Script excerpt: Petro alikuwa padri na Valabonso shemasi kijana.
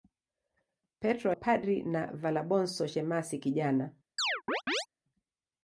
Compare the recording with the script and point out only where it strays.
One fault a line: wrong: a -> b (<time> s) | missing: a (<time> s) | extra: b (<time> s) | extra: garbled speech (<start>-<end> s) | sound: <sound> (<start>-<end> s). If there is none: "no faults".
missing: alikuwa (1.3 s)
sound: chirp (4.2-4.9 s)